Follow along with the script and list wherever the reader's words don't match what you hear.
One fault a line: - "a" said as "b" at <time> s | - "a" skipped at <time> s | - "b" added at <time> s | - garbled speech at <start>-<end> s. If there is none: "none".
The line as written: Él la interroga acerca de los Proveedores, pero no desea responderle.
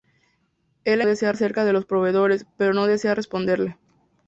- "interroga" said as "desea" at 1.0 s